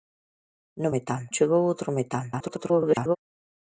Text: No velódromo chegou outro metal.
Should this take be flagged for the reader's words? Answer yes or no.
yes